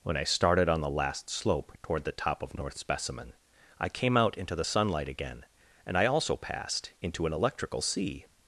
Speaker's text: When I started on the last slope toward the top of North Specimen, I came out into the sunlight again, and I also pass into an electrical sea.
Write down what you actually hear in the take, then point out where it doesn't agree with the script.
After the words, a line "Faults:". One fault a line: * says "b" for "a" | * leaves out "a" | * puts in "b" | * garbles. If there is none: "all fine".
When I started on the last slope toward the top of North Specimen, I came out into the sunlight again, and I also passed into an electrical sea.
Faults:
* says "passed" for "pass"